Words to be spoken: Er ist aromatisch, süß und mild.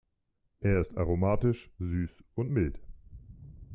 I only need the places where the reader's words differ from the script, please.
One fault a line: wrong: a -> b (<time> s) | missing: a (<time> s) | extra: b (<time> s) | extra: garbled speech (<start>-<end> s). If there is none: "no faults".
no faults